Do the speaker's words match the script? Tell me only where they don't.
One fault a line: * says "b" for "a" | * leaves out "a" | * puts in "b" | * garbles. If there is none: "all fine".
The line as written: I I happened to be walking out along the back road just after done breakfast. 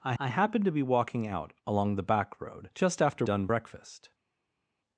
all fine